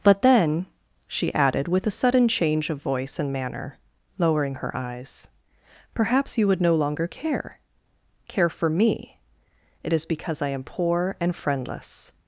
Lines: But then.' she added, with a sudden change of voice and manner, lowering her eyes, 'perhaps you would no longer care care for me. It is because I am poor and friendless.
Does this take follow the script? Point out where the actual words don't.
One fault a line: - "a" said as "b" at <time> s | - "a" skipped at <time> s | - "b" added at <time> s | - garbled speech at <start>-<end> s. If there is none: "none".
none